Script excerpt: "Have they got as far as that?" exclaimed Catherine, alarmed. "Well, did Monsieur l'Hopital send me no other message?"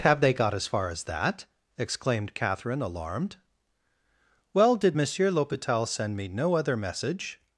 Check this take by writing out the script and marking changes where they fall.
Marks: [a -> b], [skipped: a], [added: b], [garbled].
"Have they got as far as that?" exclaimed Catherine, alarmed. "Well, did Monsieur l'Hopital send me no other message?"